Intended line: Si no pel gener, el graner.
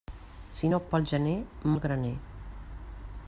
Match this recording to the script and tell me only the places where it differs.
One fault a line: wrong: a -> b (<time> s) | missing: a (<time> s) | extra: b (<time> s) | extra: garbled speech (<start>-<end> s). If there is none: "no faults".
no faults